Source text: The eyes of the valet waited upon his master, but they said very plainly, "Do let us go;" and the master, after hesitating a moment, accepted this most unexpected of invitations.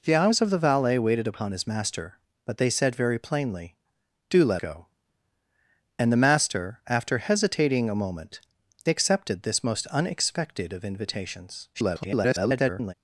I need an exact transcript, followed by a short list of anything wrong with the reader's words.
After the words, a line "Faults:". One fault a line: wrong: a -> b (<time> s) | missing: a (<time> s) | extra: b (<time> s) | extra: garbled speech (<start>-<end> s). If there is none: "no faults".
The eyes of the valet waited upon his master, but they said very plainly, "Do let go;" and the master, after hesitating a moment, accepted this most unexpected of invitations. [garbled]
Faults:
missing: us (4.6 s)
extra: garbled speech (11.7-12.9 s)